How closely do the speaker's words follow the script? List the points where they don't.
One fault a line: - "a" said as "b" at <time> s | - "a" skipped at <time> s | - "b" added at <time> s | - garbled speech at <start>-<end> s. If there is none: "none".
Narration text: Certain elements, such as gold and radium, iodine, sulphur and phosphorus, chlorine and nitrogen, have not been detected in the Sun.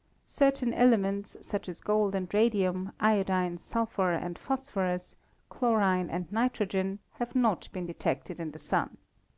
none